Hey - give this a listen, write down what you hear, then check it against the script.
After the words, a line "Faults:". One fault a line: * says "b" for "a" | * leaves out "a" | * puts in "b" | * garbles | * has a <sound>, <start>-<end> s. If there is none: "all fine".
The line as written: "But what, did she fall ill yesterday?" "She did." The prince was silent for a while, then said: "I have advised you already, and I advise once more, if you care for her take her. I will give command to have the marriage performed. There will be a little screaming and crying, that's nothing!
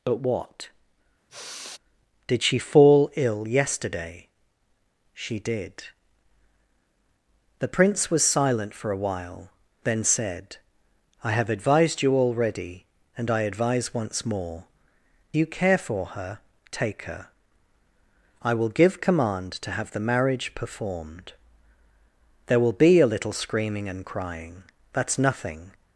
"But what, did she fall ill yesterday?" "She did." The prince was silent for a while, then said: "I have advised you already, and I advise once more, you care for her take her. I will give command to have the marriage performed. There will be a little screaming and crying, that's nothing!
Faults:
* has a sigh, 1.3-1.8 s
* leaves out "if"